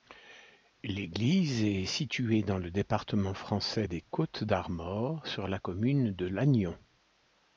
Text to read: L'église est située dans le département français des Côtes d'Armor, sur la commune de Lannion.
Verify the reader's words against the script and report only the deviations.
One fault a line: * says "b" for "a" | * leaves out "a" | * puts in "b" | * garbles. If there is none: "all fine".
all fine